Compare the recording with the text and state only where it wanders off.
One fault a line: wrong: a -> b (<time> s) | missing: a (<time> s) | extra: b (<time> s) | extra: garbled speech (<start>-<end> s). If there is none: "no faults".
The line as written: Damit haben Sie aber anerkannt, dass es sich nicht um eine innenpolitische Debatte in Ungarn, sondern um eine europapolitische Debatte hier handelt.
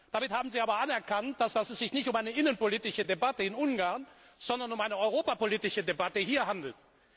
extra: dass (1.5 s)